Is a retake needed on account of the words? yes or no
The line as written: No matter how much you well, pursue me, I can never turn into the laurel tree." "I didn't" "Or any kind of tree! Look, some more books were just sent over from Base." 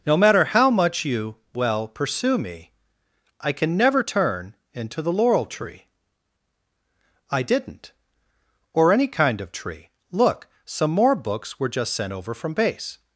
no